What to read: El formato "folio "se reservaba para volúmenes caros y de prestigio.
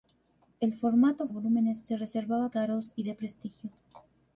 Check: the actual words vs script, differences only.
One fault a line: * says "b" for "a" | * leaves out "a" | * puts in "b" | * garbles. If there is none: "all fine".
* says "volúmenes" for "folio"
* leaves out "para volúmenes"